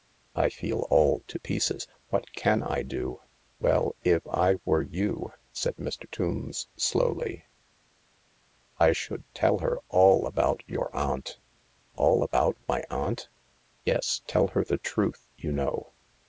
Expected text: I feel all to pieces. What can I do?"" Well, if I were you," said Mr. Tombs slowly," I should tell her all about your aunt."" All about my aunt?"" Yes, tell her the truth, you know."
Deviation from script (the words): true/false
false